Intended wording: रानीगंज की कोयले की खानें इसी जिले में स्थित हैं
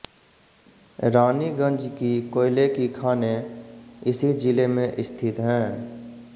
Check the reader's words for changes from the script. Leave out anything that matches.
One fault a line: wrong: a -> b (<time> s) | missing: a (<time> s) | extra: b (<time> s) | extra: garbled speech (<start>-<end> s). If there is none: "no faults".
no faults